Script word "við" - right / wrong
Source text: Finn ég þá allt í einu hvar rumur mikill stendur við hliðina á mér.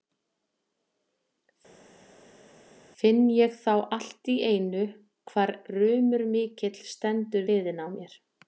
wrong